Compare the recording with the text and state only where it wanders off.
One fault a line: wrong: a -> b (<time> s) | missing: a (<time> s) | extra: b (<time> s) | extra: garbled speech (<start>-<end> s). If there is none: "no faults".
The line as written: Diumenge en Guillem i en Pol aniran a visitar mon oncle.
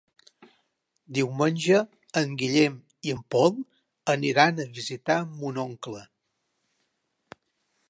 no faults